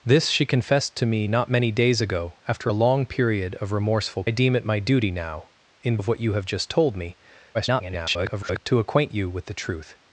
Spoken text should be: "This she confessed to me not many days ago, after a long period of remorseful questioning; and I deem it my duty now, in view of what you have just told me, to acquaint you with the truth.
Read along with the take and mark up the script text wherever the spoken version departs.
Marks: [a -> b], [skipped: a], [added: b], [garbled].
"This she confessed to me not many days ago, after a long period of remorseful [skipped: questioning; and] I deem it my duty now, in [skipped: view] of what you have just told me, [garbled] to acquaint you with the truth.